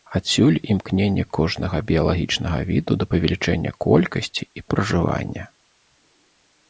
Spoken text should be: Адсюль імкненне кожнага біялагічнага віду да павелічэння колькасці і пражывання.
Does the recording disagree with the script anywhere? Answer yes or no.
no